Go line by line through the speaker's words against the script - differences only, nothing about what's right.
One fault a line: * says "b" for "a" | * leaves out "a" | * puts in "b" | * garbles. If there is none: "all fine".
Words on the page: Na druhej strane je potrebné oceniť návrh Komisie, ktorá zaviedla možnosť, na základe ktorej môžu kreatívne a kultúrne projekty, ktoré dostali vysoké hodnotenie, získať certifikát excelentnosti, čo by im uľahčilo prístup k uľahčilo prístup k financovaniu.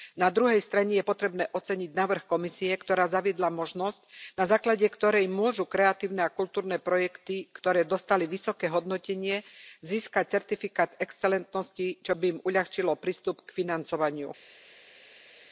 * leaves out "uľahčilo prístup k"